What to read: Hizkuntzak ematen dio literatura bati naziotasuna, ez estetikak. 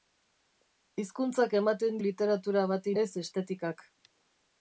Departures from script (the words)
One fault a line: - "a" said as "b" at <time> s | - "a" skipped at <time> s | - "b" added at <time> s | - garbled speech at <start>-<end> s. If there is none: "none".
- "dio" skipped at 2.0 s
- "naziotasuna" skipped at 3.0 s